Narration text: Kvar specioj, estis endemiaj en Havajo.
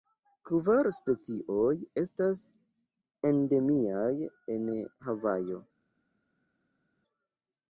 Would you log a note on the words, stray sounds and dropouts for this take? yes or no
yes